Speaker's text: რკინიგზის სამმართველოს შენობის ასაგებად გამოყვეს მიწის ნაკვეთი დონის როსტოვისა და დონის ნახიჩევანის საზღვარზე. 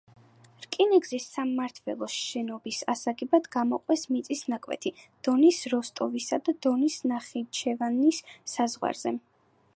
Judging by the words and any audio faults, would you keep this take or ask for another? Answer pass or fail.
pass